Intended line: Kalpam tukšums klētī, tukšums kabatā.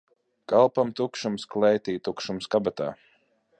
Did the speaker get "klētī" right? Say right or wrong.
right